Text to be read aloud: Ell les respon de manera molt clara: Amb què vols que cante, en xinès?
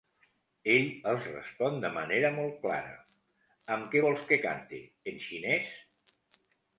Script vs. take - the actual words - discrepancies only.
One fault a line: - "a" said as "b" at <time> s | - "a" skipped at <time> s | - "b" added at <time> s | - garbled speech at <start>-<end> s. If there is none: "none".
- "les" said as "els" at 1.1 s